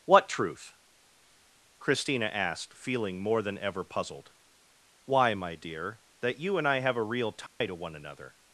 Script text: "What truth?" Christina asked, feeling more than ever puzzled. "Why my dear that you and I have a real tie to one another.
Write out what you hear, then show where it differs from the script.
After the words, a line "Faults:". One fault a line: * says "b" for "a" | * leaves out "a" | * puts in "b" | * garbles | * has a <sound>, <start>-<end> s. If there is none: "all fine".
"What truth?" Christina asked, feeling more than ever puzzled. "Why my dear that you and I have a real tie to one another.
Faults:
* has a dropout, 7.5-7.6 s